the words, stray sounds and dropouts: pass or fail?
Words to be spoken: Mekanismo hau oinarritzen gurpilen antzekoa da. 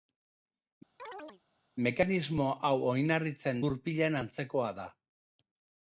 fail